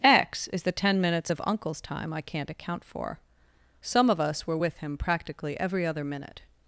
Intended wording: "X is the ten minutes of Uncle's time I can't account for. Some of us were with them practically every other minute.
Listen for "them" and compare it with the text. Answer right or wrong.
wrong